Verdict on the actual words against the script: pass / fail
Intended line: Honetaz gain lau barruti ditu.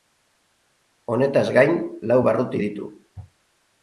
pass